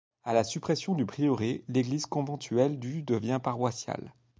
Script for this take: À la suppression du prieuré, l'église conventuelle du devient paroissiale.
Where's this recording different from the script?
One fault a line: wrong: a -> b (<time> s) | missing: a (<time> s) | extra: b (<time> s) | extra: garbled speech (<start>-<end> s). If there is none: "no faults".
no faults